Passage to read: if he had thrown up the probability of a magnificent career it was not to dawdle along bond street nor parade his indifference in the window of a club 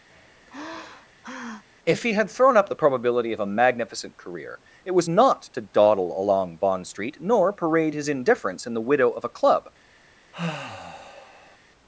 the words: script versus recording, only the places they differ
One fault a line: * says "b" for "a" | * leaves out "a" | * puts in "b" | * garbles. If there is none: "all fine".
* says "widow" for "window"